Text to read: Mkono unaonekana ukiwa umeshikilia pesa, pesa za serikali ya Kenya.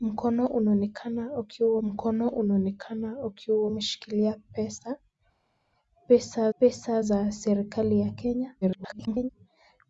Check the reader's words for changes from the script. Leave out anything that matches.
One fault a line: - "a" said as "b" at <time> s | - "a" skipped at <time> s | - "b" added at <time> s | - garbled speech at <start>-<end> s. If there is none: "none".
- "mkono unaonekana ukiwa" added at 1.8 s
- "pesa" added at 6.6 s
- garbled speech at 8.6-9.3 s